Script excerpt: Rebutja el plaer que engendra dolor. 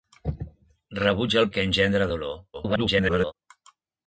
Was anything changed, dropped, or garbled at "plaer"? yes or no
yes